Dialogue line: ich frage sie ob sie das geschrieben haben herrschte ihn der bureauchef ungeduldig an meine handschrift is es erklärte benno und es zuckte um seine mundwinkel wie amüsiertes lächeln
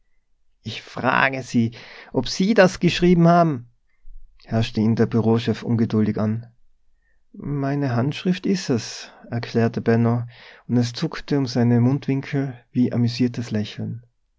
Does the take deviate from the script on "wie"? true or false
false